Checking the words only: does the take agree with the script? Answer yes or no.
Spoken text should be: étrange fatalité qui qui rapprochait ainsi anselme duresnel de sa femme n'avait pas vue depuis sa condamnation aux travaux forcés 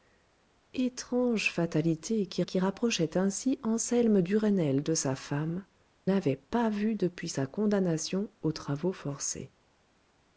yes